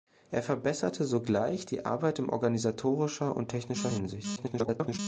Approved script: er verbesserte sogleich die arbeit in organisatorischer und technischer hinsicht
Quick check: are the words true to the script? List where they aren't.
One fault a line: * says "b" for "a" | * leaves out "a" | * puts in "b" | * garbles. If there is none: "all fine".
* garbles